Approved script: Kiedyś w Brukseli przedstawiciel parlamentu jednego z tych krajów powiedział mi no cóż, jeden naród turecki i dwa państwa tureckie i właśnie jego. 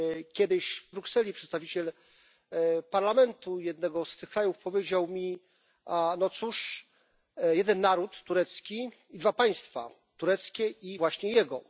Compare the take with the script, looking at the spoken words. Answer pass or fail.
pass